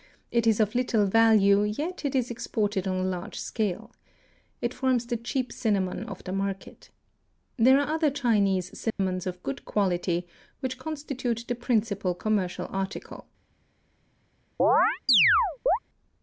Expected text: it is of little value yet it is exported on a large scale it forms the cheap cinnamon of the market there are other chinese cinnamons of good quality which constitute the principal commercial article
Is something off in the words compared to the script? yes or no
no